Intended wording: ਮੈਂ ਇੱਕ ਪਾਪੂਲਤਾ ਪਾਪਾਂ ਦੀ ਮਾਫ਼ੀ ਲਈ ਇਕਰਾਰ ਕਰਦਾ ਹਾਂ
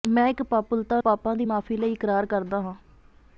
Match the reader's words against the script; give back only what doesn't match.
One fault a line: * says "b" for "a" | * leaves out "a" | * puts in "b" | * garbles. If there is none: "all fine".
all fine